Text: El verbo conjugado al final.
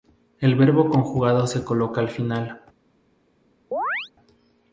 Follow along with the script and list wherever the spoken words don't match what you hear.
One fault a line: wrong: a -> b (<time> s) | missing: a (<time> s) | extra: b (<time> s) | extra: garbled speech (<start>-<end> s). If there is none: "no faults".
extra: se coloca (1.4 s)